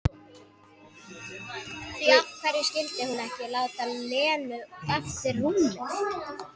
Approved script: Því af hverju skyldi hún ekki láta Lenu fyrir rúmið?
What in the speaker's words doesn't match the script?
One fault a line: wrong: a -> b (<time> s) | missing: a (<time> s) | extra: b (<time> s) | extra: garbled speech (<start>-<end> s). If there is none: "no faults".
wrong: fyrir -> eftir (5.0 s)